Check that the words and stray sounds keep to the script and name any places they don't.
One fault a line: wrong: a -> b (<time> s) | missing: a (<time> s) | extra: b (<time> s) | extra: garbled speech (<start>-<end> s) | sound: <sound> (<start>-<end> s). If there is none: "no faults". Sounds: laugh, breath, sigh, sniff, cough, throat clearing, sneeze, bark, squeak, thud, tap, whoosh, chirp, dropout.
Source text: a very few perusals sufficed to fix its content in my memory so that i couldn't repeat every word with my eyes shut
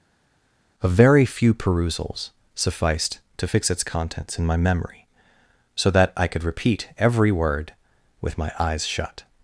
wrong: content -> contents (3.8 s)
wrong: couldn't -> could (6.3 s)